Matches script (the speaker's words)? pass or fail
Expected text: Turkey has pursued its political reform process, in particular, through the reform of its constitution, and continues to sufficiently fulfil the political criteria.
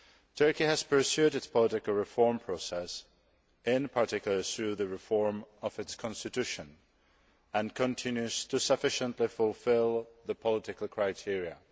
pass